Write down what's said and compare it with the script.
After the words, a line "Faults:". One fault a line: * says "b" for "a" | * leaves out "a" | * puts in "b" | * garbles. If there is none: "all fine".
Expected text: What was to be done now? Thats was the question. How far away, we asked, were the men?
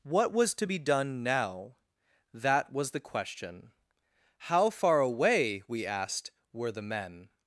What was to be done now? That was the question. How far away, we asked, were the men?
Faults:
* says "That" for "Thats"